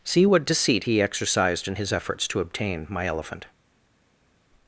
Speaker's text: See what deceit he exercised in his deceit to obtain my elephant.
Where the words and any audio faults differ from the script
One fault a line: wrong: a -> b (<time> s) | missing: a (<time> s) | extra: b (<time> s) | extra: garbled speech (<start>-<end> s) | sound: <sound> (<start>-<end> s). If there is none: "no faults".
wrong: deceit -> efforts (1.9 s)